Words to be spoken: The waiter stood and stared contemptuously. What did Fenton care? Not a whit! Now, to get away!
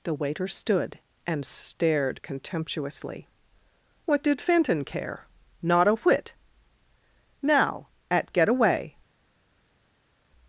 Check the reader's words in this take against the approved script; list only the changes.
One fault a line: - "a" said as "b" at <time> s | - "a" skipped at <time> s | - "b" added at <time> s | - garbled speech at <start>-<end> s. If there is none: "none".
- "to" said as "at" at 8.1 s